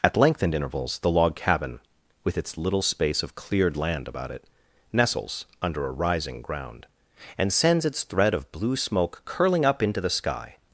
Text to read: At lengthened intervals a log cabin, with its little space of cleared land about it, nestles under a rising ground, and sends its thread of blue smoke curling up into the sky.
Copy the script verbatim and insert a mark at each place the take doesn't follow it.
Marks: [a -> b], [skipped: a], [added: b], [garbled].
At lengthened intervals [a -> the] log cabin, with its little space of cleared land about it, nestles under a rising ground, and sends its thread of blue smoke curling up into the sky.